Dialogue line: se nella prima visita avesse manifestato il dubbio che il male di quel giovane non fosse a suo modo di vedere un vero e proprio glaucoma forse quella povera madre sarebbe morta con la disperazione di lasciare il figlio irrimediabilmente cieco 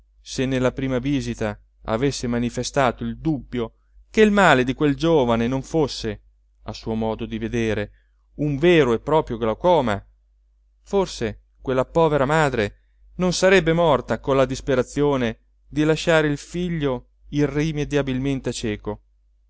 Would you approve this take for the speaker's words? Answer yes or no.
no